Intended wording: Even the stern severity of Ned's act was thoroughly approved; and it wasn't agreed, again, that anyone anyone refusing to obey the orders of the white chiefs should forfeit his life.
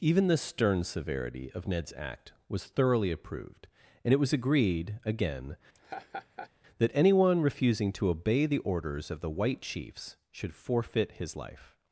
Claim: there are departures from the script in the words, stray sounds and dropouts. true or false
true